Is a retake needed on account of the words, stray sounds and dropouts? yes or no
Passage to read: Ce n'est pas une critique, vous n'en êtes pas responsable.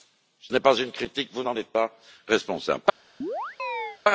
yes